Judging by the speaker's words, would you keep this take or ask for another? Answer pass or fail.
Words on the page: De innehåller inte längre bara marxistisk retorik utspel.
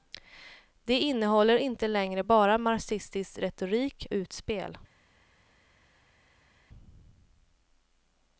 pass